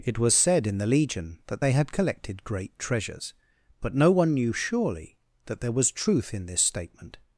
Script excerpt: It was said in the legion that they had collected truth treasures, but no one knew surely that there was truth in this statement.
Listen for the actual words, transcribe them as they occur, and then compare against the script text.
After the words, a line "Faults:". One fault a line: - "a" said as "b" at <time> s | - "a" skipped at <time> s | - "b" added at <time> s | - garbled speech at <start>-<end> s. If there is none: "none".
It was said in the legion that they had collected great treasures, but no one knew surely that there was truth in this statement.
Faults:
- "truth" said as "great" at 2.4 s